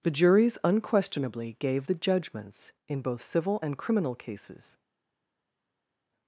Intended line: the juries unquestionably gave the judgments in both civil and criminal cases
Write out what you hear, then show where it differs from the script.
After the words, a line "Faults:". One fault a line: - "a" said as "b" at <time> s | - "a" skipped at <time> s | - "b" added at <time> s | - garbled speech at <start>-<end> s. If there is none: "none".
the juries unquestionably gave the judgments in both civil and criminal cases
Faults:
none